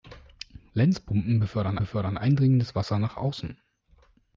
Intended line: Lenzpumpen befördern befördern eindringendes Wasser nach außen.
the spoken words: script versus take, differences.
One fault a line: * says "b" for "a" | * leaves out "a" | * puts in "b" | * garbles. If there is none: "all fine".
all fine